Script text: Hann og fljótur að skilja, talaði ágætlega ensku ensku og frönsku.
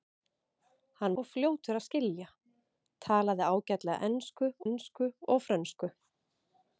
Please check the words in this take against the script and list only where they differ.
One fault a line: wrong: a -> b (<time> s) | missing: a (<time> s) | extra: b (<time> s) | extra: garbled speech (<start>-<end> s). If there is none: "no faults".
no faults